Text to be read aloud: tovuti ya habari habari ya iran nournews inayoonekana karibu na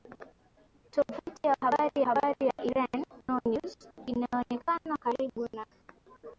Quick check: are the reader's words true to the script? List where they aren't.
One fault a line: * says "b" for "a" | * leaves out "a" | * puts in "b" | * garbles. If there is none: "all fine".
all fine